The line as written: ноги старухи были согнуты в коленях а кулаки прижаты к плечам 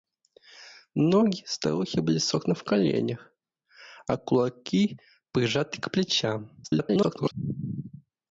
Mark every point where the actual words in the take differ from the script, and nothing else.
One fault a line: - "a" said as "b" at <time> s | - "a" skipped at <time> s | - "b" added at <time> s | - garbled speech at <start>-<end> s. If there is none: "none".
- garbled speech at 6.6-7.3 s